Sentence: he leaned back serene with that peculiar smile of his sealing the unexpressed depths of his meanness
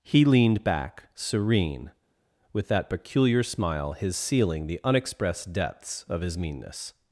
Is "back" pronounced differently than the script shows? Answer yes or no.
no